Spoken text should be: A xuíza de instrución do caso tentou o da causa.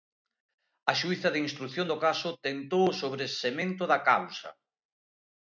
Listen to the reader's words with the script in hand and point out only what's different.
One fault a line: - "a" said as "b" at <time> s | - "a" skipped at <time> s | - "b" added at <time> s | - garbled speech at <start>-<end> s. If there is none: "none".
- "sobresemento" added at 3.0 s